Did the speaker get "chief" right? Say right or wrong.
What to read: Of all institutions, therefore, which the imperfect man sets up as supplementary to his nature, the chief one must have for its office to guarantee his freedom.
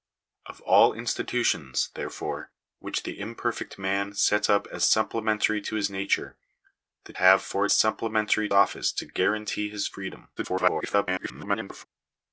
wrong